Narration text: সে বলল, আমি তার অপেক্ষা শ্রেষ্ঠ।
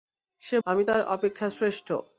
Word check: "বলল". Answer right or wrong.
wrong